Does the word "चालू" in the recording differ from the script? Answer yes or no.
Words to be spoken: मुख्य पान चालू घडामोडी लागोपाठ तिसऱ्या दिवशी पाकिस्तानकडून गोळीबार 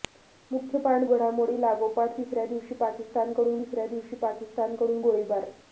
yes